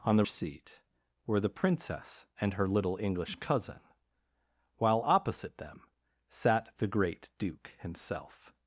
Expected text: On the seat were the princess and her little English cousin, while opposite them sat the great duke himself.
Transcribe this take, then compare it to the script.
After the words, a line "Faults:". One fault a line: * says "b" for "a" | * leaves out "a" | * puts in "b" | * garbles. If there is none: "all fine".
On the seat were the princess and her little English cousin, while opposite them sat the great duke himself.
Faults:
all fine